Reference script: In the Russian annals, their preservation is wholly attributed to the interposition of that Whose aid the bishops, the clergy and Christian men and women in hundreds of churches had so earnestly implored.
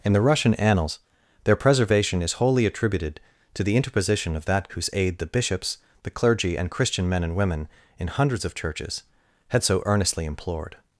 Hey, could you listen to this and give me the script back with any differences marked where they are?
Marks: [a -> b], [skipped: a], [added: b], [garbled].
In the Russian annals, their preservation is wholly attributed to the interposition of that Whose aid the bishops, the clergy and Christian men and women in hundreds of churches had so earnestly implored.